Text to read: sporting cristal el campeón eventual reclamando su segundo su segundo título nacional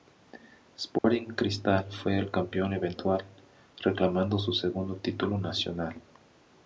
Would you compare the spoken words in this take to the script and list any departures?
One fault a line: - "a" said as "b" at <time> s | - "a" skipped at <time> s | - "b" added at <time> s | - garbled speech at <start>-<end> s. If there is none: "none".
- "fue" added at 1.9 s
- "su segundo" skipped at 5.0 s